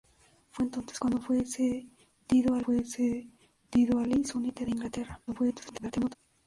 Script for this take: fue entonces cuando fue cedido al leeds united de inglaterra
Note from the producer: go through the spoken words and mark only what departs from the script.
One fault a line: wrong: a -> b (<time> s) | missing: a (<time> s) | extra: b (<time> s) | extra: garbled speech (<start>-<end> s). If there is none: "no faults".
extra: fue cedido al (2.6 s)
extra: garbled speech (5.3-6.2 s)